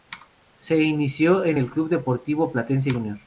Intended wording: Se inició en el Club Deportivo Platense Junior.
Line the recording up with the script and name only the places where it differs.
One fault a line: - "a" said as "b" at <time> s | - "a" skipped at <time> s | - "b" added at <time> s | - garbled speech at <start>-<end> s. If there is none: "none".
none